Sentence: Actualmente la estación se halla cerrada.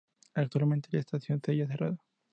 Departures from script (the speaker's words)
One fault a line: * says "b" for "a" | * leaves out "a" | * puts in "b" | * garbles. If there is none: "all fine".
all fine